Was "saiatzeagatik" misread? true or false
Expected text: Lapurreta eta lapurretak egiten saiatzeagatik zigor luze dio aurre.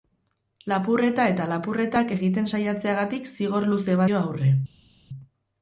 false